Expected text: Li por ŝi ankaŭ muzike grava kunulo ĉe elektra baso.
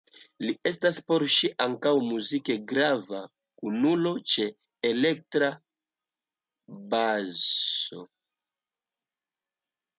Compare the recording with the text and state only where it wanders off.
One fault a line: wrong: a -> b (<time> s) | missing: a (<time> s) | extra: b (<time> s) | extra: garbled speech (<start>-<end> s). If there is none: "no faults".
extra: estas (0.7 s)